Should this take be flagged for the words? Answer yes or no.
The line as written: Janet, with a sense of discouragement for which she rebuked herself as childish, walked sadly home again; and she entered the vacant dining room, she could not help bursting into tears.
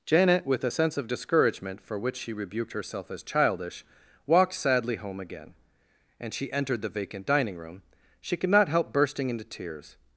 no